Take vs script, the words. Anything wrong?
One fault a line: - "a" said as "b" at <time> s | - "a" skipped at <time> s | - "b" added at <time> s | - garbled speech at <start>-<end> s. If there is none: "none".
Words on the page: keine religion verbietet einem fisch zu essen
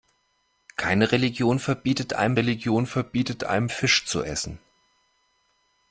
- "religion verbietet einem" added at 2.4 s